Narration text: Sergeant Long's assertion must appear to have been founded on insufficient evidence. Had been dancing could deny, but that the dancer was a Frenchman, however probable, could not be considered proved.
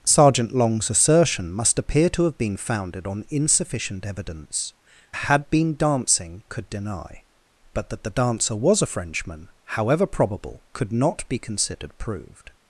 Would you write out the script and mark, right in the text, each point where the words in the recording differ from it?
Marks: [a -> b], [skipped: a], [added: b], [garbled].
Sergeant Long's assertion must appear to have been founded on insufficient evidence. Had been dancing could deny, but that the dancer was a Frenchman, however probable, could not be considered proved.